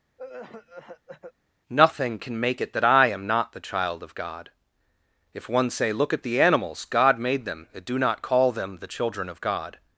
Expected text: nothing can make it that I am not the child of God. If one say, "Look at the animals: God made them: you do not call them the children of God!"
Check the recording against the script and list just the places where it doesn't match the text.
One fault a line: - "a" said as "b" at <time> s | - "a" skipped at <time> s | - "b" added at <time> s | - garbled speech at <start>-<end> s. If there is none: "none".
- "you" said as "and" at 7.7 s